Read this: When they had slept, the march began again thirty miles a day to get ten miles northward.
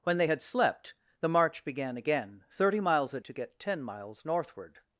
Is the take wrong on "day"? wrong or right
wrong